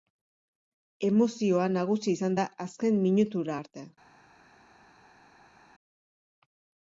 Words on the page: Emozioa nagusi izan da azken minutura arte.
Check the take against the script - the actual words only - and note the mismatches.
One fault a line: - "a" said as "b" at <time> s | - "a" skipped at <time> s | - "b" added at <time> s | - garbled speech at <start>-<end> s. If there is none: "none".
none